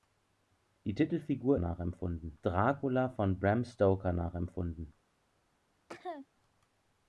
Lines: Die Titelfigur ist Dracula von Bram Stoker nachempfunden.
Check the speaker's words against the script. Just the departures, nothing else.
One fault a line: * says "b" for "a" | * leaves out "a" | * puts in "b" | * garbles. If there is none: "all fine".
* says "nachempfunden" for "ist"